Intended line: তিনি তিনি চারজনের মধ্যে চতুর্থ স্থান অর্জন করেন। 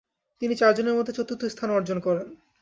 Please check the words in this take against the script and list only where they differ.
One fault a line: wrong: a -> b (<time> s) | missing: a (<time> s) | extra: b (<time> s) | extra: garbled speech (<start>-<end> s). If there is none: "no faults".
missing: তিনি (0.5 s)